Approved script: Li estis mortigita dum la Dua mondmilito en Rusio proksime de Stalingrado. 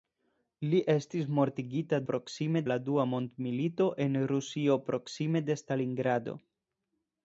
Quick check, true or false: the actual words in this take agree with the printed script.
false